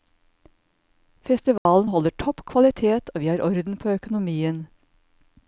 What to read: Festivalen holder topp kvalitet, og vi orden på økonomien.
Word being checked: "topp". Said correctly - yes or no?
yes